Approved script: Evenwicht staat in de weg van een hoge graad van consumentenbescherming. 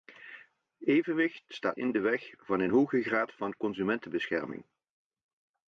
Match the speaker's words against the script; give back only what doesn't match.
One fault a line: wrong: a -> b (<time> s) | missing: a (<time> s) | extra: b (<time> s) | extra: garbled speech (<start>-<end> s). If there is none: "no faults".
no faults